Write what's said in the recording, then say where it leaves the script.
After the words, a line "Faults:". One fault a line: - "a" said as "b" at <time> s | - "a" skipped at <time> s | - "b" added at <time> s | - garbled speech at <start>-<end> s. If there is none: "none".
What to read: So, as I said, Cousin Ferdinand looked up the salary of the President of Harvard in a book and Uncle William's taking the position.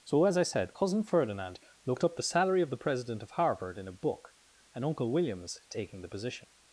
So, as I said, Cousin Ferdinand looked up the salary of the President of Harvard in a book and Uncle William's taking the position.
Faults:
none